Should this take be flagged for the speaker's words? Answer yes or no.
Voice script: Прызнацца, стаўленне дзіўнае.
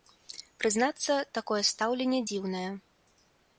yes